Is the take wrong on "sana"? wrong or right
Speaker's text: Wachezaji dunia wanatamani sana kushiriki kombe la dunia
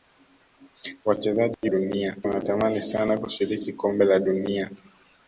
right